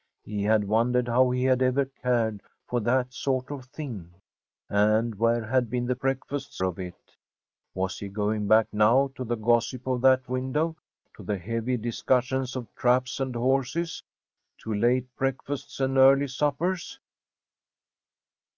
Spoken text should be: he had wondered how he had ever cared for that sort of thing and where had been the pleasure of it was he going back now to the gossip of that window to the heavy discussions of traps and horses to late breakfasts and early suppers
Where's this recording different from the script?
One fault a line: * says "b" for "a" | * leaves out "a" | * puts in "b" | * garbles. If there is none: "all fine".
* says "breakfasts" for "pleasure"